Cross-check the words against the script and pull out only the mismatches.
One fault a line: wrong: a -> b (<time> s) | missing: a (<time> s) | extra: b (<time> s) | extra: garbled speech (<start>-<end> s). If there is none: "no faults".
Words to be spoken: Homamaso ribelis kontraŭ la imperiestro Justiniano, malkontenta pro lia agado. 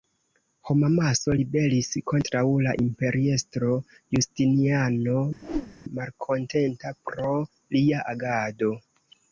no faults